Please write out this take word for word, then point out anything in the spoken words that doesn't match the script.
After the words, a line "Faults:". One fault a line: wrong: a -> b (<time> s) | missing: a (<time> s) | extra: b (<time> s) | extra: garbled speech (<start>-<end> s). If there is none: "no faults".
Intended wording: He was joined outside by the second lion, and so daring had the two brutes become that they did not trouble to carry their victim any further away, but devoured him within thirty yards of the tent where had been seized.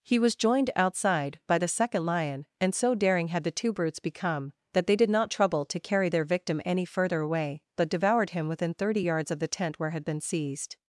He was joined outside by the second lion, and so daring had the two brutes become that they did not trouble to carry their victim any further away, but devoured him within thirty yards of the tent where had been seized.
Faults:
no faults